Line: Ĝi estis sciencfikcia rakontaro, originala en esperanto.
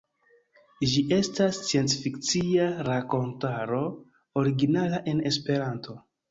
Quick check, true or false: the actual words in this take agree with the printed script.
false